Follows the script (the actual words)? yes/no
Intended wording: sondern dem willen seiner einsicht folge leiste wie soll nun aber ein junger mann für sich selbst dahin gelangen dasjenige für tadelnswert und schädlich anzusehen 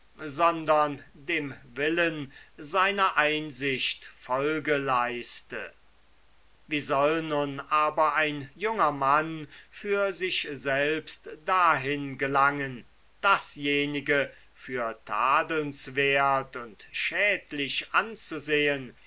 yes